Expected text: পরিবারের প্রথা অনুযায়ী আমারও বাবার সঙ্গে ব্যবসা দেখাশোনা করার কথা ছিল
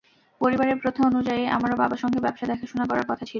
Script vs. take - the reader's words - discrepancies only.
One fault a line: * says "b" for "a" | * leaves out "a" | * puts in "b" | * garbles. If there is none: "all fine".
all fine